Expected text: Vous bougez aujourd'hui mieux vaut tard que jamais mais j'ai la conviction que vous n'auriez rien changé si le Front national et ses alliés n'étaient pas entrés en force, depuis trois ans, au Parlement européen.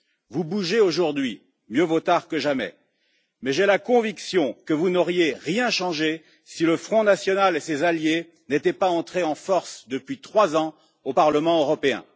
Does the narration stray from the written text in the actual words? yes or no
no